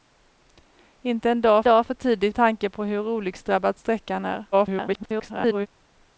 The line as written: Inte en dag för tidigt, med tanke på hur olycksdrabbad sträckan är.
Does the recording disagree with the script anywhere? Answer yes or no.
yes